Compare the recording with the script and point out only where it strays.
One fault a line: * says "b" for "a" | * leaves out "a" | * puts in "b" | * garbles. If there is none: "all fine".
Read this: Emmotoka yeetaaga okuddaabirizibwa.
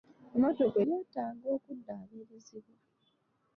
all fine